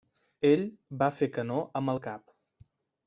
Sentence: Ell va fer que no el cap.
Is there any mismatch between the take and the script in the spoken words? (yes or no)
yes